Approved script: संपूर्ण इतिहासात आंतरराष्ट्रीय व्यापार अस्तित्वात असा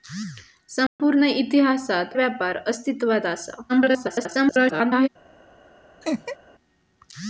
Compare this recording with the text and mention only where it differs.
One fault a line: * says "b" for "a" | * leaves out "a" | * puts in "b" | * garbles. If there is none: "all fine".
* leaves out "आंतरराष्ट्रीय"
* garbles